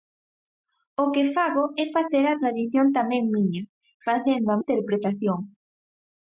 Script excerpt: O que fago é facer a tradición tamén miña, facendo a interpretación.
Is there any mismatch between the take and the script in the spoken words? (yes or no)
no